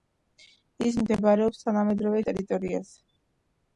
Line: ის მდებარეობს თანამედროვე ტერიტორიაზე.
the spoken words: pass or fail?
pass